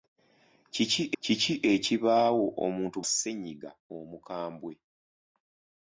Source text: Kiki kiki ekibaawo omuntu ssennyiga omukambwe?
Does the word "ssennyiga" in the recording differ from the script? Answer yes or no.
no